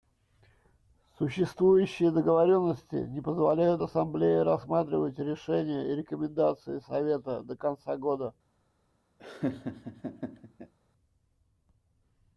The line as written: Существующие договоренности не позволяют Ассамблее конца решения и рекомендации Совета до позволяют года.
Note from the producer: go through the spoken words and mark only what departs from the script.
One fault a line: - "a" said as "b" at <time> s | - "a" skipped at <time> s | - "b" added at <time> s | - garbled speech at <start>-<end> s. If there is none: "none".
- "конца" said as "рассматривать" at 4.4 s
- "позволяют" said as "конца" at 7.6 s